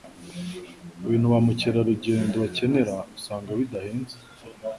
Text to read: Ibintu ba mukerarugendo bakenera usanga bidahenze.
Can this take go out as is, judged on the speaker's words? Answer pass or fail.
pass